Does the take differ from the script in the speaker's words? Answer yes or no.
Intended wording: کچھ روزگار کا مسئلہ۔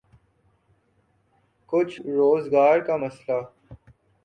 no